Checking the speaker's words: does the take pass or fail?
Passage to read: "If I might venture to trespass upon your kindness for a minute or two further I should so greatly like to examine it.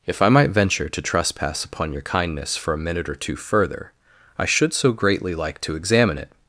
pass